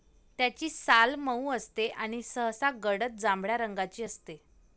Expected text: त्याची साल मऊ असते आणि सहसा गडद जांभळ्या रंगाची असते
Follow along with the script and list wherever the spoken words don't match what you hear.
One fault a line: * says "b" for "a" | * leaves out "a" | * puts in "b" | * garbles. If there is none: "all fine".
all fine